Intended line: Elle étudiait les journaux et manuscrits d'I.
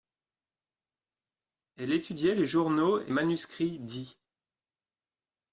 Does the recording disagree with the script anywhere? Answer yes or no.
no